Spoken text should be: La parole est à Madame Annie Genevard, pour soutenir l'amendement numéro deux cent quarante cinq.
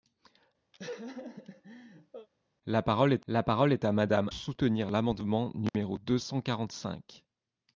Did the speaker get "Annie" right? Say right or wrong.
wrong